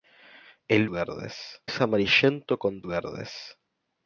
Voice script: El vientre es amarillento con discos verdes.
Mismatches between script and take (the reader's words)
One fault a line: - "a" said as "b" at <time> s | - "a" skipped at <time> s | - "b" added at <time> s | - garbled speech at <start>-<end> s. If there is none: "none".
- "vientre" said as "verdes" at 0.9 s
- "discos" skipped at 2.8 s